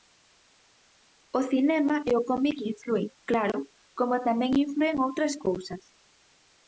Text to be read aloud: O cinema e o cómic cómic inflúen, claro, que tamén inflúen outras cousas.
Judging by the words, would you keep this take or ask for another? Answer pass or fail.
fail